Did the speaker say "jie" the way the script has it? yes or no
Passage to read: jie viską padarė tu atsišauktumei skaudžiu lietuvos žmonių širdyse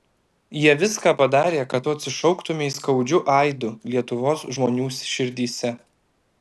yes